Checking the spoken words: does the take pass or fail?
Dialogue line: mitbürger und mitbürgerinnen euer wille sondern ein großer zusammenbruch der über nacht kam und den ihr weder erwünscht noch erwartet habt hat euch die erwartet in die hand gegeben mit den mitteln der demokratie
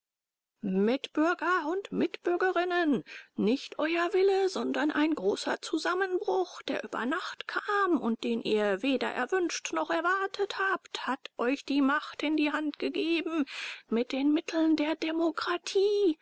fail